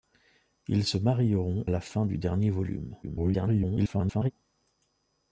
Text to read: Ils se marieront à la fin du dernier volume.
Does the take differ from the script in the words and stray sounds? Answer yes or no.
yes